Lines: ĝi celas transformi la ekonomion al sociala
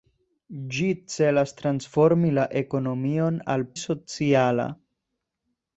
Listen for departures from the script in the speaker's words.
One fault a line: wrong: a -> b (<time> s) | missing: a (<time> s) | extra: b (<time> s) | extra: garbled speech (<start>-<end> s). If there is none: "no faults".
no faults